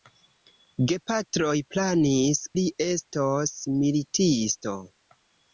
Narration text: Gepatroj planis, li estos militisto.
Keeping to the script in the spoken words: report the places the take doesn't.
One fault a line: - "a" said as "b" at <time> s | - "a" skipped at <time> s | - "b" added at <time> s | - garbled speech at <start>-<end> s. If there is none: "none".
none